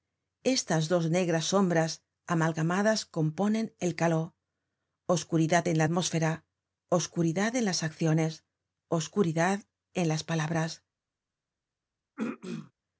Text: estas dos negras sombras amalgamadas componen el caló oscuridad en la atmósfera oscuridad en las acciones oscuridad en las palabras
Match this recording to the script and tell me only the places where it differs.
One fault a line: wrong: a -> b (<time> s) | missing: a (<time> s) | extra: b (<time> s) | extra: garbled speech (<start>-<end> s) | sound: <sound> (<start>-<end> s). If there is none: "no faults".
sound: throat clearing (12.2-12.7 s)